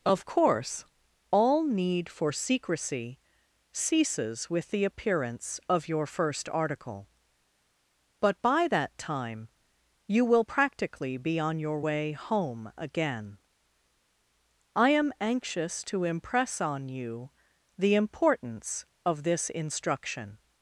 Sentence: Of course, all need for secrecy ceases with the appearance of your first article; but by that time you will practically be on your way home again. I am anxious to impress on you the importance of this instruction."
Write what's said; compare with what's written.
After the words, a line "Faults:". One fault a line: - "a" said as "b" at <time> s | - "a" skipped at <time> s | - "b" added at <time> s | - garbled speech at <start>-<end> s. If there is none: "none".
Of course, all need for secrecy ceases with the appearance of your first article; but by that time you will practically be on your way home again. I am anxious to impress on you the importance of this instruction."
Faults:
none